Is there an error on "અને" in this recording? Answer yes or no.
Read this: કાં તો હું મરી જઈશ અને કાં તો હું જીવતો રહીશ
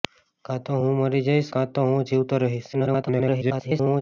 yes